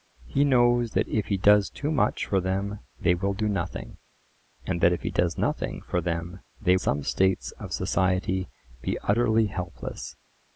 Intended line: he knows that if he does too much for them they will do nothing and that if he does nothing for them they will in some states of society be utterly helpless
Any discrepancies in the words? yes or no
yes